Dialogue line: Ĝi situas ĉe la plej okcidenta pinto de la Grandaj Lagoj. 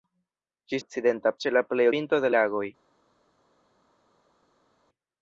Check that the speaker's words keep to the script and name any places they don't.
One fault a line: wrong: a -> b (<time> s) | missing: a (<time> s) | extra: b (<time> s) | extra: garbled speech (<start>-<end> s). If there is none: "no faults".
wrong: situas -> okcidenta (0.8 s)
missing: okcidenta (1.9 s)
missing: la Grandaj (2.4 s)